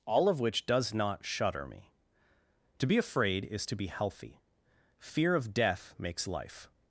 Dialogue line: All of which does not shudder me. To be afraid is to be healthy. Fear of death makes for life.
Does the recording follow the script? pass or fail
fail